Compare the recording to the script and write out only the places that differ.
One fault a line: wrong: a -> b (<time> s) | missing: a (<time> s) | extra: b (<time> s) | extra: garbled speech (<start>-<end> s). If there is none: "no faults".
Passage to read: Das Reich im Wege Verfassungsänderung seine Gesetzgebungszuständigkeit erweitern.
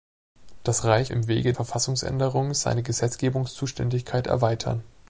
no faults